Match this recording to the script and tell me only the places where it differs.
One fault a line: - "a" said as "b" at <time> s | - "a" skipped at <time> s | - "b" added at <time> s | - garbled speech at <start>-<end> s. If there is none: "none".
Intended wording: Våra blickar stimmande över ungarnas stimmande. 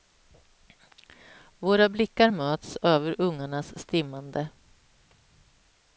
- "stimmande" said as "möts" at 2.3 s